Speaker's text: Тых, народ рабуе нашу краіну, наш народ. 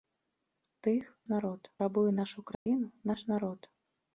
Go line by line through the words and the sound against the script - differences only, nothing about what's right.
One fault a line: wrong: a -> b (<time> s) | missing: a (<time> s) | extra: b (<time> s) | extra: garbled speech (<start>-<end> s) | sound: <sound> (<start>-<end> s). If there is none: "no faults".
sound: dropout (2.5-2.7 s)